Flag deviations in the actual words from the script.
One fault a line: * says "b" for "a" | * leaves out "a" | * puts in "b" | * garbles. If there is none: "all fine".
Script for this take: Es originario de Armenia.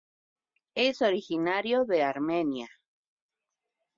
all fine